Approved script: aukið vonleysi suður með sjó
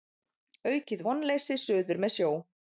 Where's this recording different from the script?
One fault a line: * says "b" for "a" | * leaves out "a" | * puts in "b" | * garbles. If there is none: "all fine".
all fine